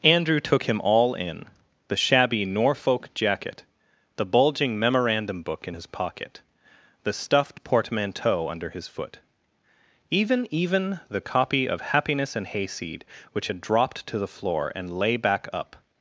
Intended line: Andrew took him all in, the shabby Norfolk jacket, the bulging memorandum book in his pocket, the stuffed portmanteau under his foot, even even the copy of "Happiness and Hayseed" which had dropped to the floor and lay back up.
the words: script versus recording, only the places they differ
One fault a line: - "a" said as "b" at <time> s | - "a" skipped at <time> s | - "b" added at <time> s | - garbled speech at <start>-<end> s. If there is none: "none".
none